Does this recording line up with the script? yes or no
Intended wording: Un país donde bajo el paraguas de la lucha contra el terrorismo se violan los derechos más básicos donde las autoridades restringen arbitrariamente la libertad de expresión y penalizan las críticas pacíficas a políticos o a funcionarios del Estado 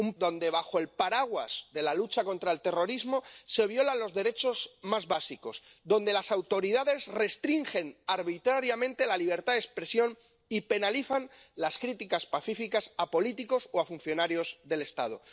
no